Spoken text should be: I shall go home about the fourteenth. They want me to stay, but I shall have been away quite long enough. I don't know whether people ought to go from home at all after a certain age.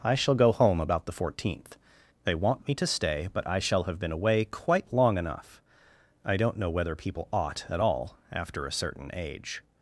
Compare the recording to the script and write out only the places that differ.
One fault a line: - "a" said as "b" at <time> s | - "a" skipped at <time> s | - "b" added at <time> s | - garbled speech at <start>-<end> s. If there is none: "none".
- "to go from home" skipped at 7.6 s